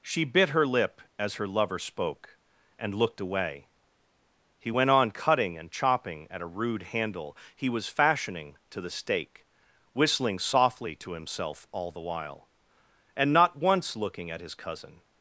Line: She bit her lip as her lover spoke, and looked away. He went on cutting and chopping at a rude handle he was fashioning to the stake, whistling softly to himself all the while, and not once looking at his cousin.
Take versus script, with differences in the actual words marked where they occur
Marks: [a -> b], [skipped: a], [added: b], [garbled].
She bit her lip as her lover spoke, and looked away. He went on cutting and chopping at a rude handle he was fashioning to the stake, whistling softly to himself all the while, and not once looking at his cousin.